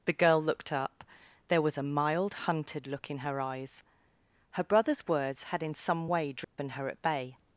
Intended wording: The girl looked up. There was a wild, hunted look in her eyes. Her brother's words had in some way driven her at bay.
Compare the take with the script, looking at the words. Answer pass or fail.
fail